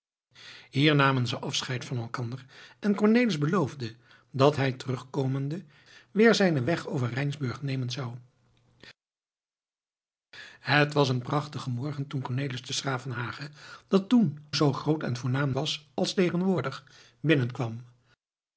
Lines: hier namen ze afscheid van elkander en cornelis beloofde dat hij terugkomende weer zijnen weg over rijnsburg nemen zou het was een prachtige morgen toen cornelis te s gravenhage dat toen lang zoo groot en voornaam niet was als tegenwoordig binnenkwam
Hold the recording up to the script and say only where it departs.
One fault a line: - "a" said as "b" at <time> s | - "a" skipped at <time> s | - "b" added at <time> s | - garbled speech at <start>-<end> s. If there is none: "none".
- "lang" skipped at 14.4 s
- "niet" skipped at 15.6 s